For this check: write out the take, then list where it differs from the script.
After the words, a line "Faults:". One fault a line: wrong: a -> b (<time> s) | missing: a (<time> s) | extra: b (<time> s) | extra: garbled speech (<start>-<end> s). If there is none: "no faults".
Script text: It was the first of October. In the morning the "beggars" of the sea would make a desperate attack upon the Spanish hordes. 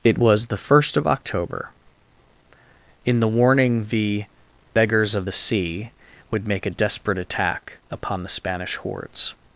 It was the first of October. In the warning the "beggars" of the sea would make a desperate attack upon the Spanish hordes.
Faults:
wrong: morning -> warning (3.3 s)